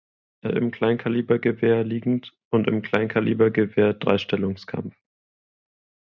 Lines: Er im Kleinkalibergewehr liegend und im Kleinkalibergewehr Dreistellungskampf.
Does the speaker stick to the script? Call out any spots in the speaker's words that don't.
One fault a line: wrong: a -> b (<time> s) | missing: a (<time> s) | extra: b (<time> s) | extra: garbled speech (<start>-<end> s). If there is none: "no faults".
no faults